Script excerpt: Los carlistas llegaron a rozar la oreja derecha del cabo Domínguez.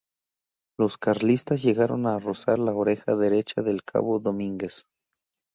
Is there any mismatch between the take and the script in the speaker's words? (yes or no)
no